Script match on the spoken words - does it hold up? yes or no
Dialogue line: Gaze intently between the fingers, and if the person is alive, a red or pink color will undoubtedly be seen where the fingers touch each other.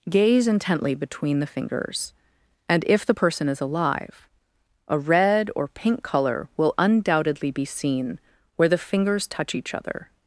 yes